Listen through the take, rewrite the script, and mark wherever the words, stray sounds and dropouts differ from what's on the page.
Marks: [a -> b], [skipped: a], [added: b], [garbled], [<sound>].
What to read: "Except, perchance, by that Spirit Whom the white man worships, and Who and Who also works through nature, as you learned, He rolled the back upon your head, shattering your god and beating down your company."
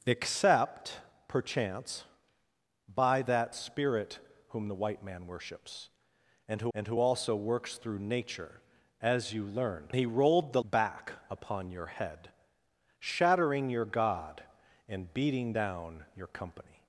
"Except, perchance, by that Spirit Whom the white man worships, and Who and Who also works through nature, as you learned, He rolled the back upon your head, shattering your god and beating down your company."